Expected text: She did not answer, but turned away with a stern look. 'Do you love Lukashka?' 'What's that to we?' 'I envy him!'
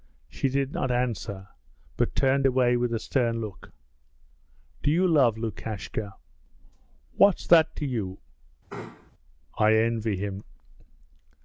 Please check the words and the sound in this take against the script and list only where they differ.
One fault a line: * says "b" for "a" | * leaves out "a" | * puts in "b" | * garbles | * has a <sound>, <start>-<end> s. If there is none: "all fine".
* says "you" for "we"
* has a sneeze, 8.7-9.1 s